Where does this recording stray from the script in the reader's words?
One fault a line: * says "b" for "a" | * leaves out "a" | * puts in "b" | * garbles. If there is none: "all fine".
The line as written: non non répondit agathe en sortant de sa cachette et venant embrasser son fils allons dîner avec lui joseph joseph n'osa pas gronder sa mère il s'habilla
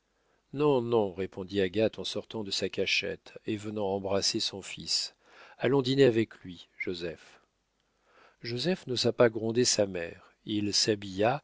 all fine